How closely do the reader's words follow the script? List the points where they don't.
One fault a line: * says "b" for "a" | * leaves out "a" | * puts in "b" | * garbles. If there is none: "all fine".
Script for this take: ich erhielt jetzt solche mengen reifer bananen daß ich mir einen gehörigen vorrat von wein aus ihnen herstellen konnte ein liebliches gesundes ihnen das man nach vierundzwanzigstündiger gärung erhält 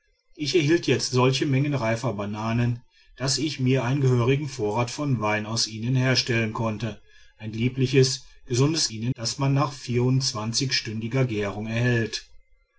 all fine